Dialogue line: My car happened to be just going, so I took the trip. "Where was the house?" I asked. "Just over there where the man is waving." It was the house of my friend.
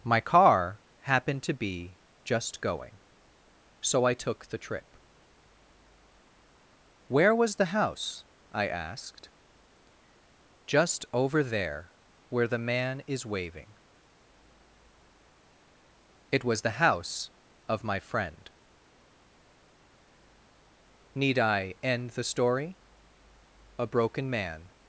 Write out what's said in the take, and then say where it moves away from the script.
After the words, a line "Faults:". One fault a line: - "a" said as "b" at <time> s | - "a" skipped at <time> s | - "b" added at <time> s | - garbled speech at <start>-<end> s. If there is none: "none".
My car happened to be just going, so I took the trip. "Where was the house?" I asked. "Just over there where the man is waving." It was the house of my friend. Need I end the story? A broken man
Faults:
- "Need I end the story A broken man" added at 21.1 s